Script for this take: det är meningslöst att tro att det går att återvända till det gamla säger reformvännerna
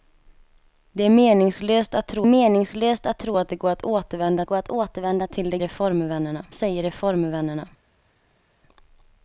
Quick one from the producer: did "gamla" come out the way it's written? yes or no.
no